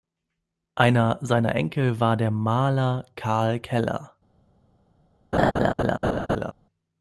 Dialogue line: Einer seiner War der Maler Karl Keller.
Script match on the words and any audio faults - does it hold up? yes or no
no